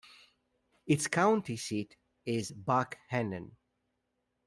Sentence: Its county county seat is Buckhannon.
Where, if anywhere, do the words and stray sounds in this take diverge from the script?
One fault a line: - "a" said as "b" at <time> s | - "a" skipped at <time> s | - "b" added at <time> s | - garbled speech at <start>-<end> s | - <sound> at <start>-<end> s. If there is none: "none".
- "county" skipped at 1.6 s